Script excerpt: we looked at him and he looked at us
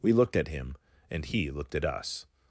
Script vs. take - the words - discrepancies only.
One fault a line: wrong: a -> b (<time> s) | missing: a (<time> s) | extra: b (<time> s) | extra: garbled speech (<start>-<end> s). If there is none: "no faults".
no faults